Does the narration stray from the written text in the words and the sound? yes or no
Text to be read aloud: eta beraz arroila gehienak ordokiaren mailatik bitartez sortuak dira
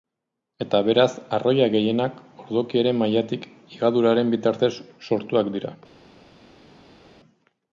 yes